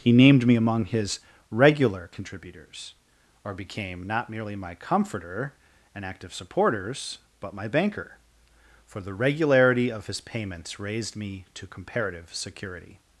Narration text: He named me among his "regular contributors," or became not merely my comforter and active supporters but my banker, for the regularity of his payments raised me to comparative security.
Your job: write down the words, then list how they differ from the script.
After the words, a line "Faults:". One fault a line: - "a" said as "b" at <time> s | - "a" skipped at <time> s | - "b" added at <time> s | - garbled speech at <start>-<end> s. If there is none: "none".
He named me among his "regular contributors," or became not merely my comforter and active supporters but my banker, for the regularity of his payments raised me to comparative security.
Faults:
none